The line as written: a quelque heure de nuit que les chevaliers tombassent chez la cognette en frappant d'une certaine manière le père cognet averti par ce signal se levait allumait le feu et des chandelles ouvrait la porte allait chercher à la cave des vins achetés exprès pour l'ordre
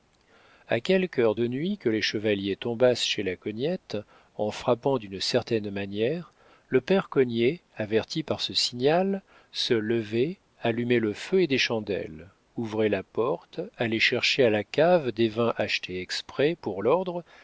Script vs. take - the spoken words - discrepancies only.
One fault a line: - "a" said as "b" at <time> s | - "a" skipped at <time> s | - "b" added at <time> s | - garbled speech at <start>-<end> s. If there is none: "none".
none